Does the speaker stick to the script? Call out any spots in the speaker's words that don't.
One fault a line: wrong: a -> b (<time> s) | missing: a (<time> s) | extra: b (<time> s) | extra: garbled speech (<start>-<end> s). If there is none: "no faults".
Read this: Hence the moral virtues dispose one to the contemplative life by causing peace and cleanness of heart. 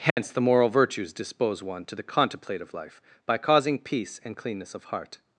no faults